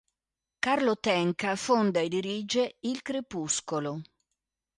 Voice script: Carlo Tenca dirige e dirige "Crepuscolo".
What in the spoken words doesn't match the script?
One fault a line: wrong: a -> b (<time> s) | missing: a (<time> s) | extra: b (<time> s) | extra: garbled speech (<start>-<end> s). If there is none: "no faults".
wrong: dirige -> fonda (1.6 s)
extra: Il (2.8 s)